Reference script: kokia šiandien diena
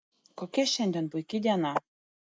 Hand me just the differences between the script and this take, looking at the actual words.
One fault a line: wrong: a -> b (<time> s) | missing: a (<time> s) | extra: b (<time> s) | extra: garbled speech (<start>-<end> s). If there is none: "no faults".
extra: puiki (1.1 s)